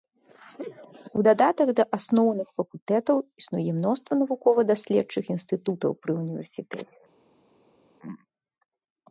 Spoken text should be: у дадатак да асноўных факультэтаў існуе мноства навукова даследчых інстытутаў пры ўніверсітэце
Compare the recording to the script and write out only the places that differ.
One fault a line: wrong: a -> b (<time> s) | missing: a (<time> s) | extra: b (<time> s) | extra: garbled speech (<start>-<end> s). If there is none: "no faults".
no faults